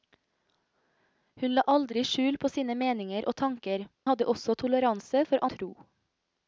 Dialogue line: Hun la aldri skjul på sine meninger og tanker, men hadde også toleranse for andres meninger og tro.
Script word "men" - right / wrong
wrong